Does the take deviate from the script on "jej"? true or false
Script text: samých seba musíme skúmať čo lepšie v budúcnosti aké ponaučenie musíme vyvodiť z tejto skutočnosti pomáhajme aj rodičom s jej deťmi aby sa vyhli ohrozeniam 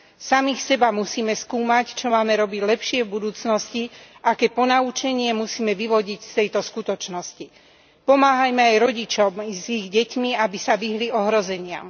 true